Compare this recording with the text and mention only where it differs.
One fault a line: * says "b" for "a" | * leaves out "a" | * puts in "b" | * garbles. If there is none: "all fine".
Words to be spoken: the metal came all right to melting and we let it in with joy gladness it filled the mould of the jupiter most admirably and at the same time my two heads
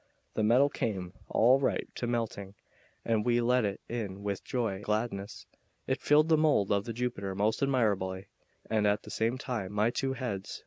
all fine